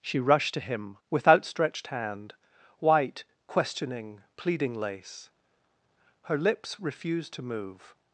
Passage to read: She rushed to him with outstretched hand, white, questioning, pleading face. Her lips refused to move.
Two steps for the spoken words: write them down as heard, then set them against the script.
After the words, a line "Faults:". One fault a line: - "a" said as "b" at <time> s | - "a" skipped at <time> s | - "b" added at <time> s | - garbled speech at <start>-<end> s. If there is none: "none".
She rushed to him with outstretched hand, white, questioning, pleading lace. Her lips refused to move.
Faults:
- "face" said as "lace" at 4.8 s